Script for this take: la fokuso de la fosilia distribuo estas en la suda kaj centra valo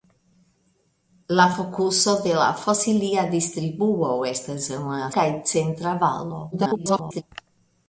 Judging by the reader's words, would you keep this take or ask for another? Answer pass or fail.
fail